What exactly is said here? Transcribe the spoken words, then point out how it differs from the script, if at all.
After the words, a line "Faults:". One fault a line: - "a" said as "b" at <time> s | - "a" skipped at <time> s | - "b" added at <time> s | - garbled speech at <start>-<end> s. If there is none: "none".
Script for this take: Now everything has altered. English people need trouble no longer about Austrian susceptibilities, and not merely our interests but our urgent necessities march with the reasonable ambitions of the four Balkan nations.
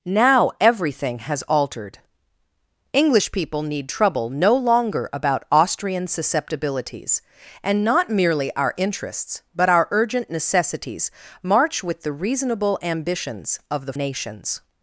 Now everything has altered. English people need trouble no longer about Austrian susceptibilities, and not merely our interests but our urgent necessities march with the reasonable ambitions of the nations.
Faults:
- "four Balkan" skipped at 13.9 s